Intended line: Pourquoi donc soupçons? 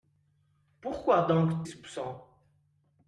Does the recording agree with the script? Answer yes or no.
yes